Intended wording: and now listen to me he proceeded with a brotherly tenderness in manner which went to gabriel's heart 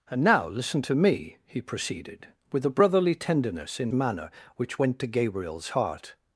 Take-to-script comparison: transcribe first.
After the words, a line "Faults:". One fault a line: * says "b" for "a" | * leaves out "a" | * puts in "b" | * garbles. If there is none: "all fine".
and now listen to me he proceeded with a brotherly tenderness in manner which went to gabriel's heart
Faults:
all fine